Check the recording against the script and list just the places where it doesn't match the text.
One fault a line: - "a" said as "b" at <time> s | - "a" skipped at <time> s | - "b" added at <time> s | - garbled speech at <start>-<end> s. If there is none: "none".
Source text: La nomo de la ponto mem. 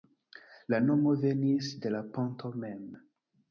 - "venis" added at 1.3 s